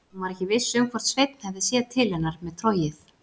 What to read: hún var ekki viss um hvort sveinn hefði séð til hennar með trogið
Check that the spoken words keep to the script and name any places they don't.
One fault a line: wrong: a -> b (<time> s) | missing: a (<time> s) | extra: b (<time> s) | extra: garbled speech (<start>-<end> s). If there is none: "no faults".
no faults